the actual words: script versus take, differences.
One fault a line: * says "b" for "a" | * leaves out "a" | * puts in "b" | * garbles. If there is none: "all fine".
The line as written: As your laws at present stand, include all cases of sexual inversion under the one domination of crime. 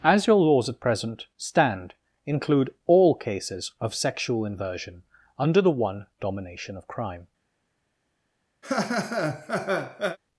all fine